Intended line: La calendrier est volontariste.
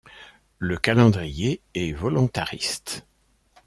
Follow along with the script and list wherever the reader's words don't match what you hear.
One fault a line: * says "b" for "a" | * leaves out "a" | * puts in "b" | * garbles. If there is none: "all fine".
* says "Le" for "La"